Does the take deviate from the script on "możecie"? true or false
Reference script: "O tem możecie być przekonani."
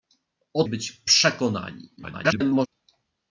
true